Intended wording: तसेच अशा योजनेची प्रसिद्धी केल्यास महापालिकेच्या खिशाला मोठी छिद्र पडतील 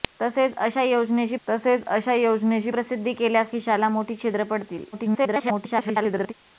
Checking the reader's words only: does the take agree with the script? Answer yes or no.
no